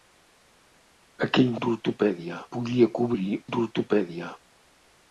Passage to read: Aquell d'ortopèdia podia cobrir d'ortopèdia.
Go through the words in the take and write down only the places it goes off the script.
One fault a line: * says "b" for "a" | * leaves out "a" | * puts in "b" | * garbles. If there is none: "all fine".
all fine